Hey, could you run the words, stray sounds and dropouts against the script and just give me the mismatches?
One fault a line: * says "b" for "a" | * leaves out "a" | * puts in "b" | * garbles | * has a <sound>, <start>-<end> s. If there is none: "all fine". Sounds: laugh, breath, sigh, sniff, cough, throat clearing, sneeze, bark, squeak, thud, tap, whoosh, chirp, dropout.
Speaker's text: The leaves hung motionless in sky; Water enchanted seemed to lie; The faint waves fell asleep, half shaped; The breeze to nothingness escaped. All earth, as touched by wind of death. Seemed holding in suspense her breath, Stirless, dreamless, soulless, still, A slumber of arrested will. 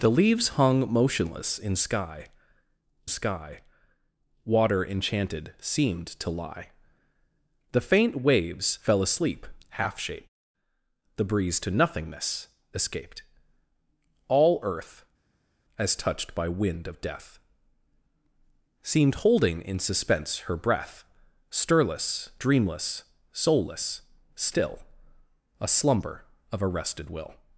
* puts in "sky"